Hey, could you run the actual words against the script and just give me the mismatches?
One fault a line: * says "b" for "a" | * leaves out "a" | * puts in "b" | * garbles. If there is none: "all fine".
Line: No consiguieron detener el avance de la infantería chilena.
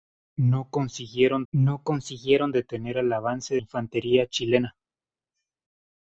* puts in "no consiguieron"
* leaves out "de la"